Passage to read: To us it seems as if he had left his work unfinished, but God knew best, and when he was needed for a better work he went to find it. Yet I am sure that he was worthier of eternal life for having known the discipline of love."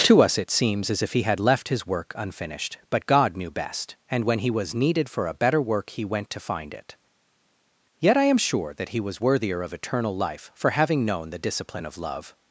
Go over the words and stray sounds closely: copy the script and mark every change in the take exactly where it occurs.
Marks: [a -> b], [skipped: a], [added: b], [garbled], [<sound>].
To us it seems as if he had left his work unfinished, but God knew best, and when he was needed for a better work he went to find it. Yet I am sure that he was worthier of eternal life for having known the discipline of love."